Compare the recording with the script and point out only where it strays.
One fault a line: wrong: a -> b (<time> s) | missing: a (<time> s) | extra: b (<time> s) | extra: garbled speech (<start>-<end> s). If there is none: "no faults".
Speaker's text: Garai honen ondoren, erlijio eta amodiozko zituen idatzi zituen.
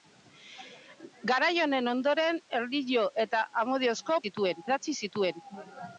no faults